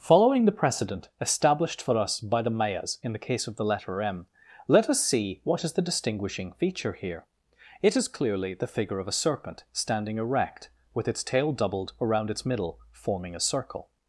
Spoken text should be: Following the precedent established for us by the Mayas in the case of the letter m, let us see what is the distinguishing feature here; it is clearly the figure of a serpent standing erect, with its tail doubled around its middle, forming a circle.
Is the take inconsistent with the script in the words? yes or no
no